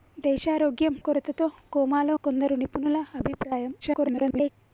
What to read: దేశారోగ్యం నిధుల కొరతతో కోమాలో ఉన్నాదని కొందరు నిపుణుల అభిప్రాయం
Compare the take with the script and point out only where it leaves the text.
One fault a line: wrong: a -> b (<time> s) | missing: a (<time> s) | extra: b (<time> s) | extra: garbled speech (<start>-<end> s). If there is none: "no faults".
missing: నిధుల (0.9 s)
missing: ఉన్నాదని (2.1 s)
extra: garbled speech (3.8-4.5 s)